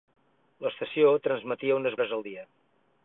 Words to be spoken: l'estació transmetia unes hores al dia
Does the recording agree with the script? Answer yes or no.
yes